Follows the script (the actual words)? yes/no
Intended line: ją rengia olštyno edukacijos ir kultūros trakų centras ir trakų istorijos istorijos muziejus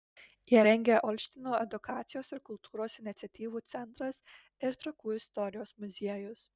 no